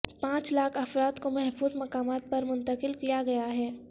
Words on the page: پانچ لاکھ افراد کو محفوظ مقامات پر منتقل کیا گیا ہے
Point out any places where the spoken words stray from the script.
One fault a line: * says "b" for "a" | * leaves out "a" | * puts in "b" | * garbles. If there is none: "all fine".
all fine